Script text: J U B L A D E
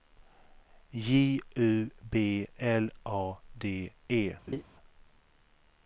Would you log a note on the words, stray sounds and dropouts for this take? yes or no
yes